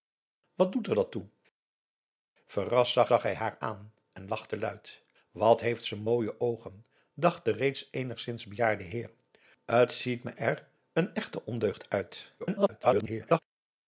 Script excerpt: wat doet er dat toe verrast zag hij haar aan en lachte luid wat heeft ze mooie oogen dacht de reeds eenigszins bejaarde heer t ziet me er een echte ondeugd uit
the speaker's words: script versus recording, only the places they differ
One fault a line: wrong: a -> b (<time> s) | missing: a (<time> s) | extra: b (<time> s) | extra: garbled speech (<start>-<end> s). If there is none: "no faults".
extra: zag (3.1 s)
extra: garbled speech (12.4-13.4 s)